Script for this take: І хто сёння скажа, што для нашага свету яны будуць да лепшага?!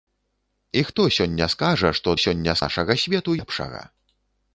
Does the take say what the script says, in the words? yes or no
no